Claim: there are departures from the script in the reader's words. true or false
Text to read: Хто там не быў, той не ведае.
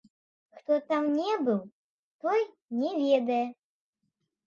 false